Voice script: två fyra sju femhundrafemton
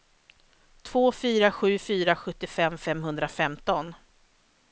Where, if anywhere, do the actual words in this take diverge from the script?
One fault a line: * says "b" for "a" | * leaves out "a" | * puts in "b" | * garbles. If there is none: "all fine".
* puts in "fyra sjuttiofem"